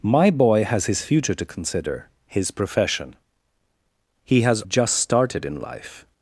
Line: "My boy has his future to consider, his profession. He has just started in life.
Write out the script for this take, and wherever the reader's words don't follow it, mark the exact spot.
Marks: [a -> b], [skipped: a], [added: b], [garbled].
"My boy has his future to consider, his profession. He has just started in life.